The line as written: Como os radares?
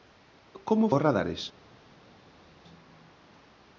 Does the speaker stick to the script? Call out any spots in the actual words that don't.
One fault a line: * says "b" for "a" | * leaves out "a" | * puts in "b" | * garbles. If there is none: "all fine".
all fine